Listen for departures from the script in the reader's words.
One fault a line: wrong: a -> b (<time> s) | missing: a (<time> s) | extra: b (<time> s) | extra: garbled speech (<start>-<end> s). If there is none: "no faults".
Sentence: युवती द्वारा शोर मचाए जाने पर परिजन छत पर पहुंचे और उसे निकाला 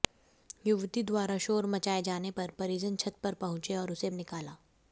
no faults